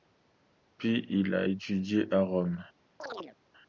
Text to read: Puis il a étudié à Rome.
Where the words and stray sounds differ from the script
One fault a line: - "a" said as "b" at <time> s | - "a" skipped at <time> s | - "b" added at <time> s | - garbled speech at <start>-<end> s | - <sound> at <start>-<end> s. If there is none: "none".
- chirp at 3.0-3.4 s